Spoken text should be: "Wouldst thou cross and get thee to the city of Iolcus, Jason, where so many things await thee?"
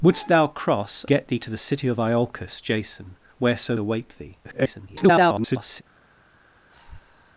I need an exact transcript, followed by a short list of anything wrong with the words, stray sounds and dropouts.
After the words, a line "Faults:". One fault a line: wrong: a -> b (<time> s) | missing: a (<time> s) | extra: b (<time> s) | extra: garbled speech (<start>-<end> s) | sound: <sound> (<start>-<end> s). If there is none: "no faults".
"Wouldst thou cross get thee to the city of Iolcus, Jason, where so await thee?" [garbled]
Faults:
missing: and (1.1 s)
missing: many things (3.8 s)
extra: garbled speech (4.4-5.8 s)
sound: breath (6.7-7.3 s)